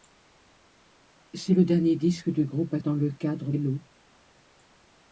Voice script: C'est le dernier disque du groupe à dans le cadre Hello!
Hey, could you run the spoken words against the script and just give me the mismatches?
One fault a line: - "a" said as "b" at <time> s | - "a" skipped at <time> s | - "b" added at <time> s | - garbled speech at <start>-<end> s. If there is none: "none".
none